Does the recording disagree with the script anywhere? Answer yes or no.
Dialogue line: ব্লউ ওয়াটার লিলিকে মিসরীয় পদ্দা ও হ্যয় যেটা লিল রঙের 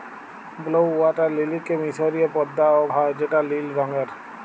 no